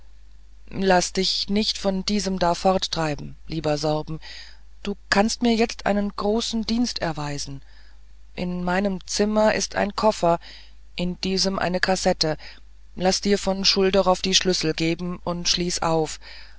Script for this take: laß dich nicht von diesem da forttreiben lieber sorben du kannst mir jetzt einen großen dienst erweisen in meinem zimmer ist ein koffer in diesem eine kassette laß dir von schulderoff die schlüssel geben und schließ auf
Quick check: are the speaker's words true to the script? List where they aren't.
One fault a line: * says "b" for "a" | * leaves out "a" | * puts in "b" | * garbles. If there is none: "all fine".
all fine